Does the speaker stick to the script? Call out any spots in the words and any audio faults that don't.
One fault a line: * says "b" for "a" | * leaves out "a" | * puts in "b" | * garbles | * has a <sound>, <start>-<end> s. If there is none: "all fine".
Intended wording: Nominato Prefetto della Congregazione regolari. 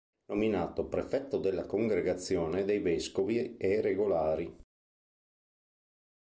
* puts in "dei vescovi e"